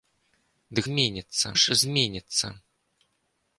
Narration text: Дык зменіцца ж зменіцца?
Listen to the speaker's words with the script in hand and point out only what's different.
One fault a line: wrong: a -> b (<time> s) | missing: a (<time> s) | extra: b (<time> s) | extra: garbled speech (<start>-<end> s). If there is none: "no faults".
no faults